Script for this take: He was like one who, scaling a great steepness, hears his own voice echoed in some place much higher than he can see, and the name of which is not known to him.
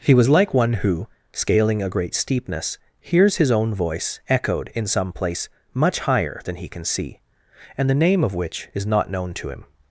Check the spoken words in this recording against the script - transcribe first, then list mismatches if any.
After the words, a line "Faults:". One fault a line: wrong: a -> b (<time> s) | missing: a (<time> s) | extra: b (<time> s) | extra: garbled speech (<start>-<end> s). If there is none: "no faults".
He was like one who, scaling a great steepness, hears his own voice echoed in some place much higher than he can see, and the name of which is not known to him.
Faults:
no faults